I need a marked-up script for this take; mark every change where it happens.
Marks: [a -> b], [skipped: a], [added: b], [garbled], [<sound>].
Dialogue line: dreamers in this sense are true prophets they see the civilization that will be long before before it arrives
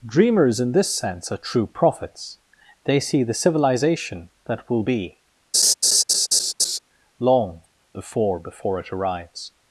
dreamers in this sense are true prophets they see the civilization that will be [laugh] long before before it arrives